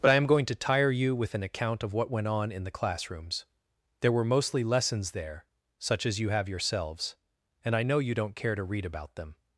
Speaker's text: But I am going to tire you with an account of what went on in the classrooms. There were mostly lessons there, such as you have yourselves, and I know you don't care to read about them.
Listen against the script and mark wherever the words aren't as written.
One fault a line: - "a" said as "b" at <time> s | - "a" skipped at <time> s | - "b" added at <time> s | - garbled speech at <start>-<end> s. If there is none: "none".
none